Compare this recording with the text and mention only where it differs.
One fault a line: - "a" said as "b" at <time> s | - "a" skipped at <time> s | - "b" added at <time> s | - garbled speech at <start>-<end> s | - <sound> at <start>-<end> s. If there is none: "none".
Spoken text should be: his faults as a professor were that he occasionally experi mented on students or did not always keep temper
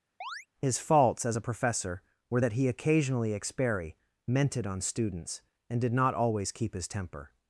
- chirp at 0.2-0.5 s
- "or" said as "and" at 5.7 s
- "his" added at 6.7 s